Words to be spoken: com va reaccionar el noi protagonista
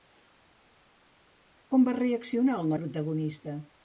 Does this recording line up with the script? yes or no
no